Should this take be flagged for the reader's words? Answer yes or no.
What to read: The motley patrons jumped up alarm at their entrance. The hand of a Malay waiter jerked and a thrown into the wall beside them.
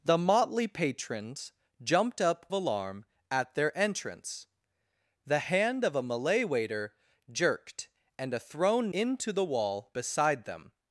no